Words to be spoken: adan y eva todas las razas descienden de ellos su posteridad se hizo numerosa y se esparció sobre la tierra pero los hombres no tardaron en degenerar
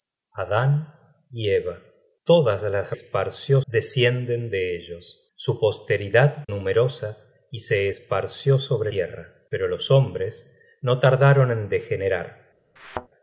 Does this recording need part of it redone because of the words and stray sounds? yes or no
yes